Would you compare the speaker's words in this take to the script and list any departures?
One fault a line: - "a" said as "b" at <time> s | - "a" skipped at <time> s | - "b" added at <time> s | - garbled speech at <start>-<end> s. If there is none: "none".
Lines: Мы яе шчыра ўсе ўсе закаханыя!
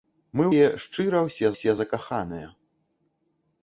none